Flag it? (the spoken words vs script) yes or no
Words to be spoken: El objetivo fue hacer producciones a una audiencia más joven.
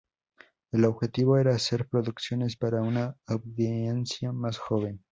yes